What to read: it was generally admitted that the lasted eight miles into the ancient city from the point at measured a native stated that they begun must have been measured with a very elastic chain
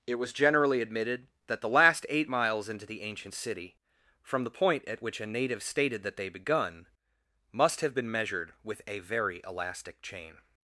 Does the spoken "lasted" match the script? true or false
false